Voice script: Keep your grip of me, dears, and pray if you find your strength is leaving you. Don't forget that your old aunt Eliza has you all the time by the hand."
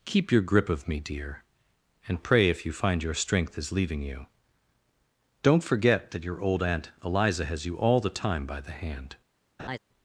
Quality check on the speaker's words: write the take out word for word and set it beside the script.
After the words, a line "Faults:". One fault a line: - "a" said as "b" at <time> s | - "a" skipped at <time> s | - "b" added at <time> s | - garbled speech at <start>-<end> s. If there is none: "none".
Keep your grip of me, dear, and pray if you find your strength is leaving you. Don't forget that your old aunt Eliza has you all the time by the hand."
Faults:
- "dears" said as "dear" at 1.0 s